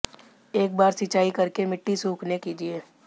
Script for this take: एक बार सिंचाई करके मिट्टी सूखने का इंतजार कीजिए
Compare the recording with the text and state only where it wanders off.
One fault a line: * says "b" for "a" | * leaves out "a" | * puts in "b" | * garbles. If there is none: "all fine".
* leaves out "का इंतजार"